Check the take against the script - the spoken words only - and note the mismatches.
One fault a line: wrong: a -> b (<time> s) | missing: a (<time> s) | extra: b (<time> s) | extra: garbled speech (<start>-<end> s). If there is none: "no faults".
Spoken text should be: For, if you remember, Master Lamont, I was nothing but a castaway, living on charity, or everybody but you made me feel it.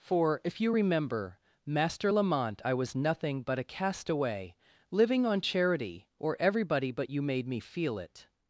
no faults